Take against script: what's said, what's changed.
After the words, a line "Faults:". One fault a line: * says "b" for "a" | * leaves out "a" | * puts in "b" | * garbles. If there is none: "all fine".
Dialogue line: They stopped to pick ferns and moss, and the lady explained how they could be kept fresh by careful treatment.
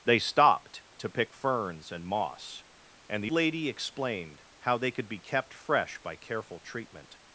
They stopped to pick ferns and moss, and the lady explained how they could be kept fresh by careful treatment.
Faults:
all fine